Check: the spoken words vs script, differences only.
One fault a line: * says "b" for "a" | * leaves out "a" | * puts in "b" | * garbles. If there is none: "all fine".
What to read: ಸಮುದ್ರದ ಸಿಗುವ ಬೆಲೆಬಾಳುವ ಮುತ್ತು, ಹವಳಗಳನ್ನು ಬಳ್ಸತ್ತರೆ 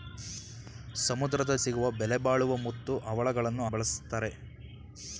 all fine